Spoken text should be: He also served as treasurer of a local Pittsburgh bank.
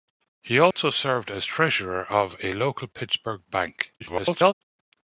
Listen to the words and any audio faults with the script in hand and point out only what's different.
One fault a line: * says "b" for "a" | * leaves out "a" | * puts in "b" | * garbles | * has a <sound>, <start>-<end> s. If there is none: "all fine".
* has a dropout, 0.7-0.8 s
* garbles